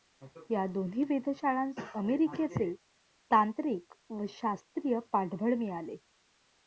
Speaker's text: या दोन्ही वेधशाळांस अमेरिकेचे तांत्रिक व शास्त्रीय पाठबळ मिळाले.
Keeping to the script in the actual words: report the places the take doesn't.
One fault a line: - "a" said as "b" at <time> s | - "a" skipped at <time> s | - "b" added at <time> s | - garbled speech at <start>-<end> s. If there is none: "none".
none